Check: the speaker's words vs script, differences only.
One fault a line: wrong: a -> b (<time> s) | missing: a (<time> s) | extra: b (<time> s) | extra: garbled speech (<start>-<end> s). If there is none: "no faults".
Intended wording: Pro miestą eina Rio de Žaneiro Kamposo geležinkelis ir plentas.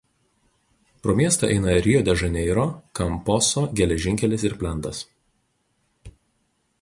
no faults